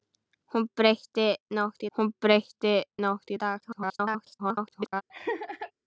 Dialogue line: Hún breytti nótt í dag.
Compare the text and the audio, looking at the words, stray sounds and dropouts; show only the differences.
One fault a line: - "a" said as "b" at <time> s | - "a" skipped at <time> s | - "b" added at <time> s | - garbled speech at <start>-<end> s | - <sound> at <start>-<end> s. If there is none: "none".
- "hún breytti nótt" added at 2.0 s
- garbled speech at 3.6-5.0 s
- laugh at 5.1-5.7 s